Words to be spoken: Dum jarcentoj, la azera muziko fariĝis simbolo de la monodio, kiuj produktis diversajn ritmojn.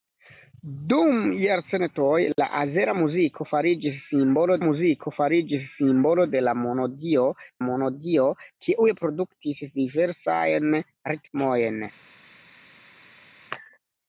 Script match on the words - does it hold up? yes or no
no